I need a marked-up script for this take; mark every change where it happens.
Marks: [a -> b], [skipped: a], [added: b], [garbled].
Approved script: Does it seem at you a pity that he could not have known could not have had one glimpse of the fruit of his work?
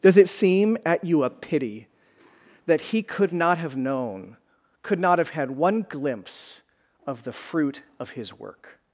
Does it seem at you a pity that he could not have known could not have had one glimpse of the fruit of his work?